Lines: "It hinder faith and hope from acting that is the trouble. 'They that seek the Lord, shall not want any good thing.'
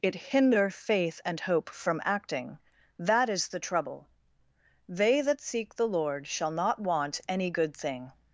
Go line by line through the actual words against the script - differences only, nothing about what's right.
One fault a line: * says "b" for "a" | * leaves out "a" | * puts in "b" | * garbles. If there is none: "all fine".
all fine